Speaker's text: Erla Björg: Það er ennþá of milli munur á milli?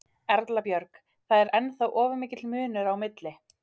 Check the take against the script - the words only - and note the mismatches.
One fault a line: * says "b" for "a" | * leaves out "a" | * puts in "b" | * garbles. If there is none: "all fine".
* says "mikill" for "milli"